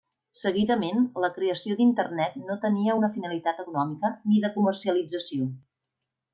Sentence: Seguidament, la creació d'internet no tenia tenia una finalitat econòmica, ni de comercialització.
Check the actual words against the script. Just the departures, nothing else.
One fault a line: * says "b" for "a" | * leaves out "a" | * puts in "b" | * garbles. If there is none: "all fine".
* leaves out "tenia"